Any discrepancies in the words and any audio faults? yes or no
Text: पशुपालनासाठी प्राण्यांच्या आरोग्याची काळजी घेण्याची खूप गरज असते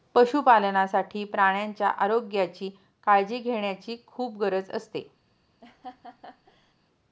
yes